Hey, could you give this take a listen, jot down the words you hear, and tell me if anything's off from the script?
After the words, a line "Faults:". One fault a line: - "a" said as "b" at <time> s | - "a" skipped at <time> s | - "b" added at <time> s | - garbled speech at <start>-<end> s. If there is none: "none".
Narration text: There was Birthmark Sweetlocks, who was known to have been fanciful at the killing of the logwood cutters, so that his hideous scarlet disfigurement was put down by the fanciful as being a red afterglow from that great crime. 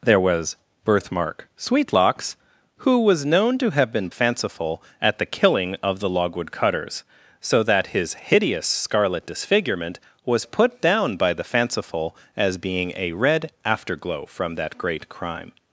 There was Birthmark Sweetlocks, who was known to have been fanciful at the killing of the logwood cutters, so that his hideous scarlet disfigurement was put down by the fanciful as being a red afterglow from that great crime.
Faults:
none